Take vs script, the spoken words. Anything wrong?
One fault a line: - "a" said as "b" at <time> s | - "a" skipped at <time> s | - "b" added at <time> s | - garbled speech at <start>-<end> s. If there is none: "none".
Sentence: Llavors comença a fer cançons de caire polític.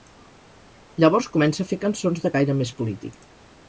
- "més" added at 2.6 s